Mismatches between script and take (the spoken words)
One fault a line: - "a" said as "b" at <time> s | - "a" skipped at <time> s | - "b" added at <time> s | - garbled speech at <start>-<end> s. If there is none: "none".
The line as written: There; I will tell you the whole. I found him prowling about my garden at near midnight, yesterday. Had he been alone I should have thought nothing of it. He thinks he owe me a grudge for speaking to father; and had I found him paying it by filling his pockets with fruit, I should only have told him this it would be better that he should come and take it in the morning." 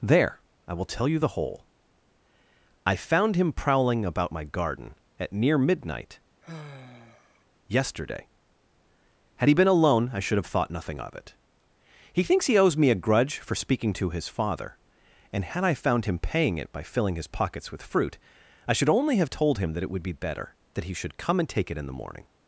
- "owe" said as "owes" at 12.6 s
- "his" added at 14.1 s
- "this" said as "that" at 19.7 s